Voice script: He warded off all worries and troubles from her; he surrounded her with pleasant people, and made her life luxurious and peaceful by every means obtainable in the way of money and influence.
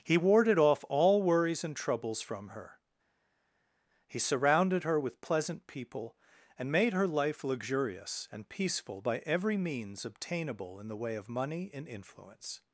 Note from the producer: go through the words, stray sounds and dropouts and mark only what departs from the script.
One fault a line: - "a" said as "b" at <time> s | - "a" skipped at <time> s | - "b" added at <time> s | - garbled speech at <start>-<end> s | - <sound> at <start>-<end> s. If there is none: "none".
none